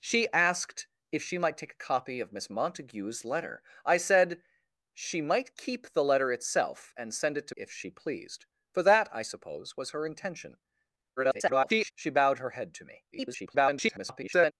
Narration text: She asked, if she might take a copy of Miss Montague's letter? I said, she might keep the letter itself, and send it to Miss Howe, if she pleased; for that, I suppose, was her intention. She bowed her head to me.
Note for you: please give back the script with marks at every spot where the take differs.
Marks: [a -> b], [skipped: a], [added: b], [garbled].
She asked, if she might take a copy of Miss Montague's letter? I said, she might keep the letter itself, and send it to [skipped: Miss Howe,] if she pleased; for that, I suppose, was her intention. [garbled] She bowed her head to me. [garbled]